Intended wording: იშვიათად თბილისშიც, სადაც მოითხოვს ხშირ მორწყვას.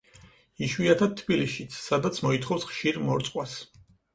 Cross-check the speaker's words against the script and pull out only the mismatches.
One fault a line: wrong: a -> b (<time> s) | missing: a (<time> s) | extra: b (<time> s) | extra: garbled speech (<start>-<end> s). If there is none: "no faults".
no faults